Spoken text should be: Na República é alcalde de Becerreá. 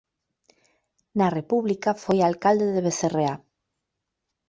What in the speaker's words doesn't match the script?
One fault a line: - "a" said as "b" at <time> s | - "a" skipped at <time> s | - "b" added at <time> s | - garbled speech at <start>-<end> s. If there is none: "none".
- "é" said as "foi" at 2.0 s